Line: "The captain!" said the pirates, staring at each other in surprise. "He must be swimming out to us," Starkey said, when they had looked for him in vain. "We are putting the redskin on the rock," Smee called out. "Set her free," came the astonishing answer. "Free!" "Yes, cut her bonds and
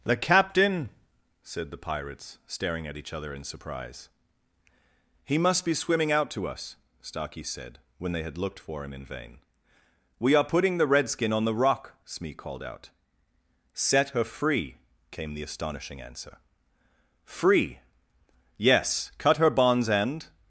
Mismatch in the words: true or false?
false